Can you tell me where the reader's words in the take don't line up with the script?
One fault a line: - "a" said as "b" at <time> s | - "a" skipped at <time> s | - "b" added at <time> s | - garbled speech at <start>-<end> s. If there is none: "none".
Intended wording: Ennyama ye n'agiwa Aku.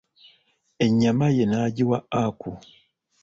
none